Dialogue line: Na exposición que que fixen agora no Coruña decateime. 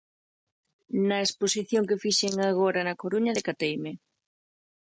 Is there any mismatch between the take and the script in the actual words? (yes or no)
yes